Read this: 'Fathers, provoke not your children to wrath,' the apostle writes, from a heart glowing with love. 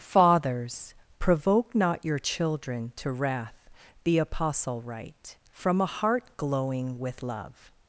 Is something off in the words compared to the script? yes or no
yes